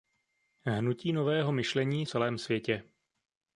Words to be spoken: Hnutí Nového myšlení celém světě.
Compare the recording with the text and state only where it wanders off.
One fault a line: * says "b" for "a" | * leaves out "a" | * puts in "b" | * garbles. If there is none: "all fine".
all fine